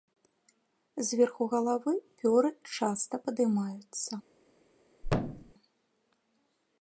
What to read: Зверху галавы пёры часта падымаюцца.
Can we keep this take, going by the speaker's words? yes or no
yes